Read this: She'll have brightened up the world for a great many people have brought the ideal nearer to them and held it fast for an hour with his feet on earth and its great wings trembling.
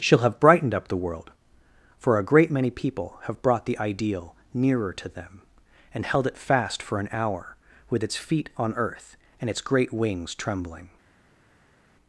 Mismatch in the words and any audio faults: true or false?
true